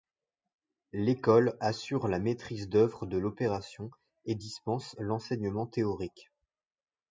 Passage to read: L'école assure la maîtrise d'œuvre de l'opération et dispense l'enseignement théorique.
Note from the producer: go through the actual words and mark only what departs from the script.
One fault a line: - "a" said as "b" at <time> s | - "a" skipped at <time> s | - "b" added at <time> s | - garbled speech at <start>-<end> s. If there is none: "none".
none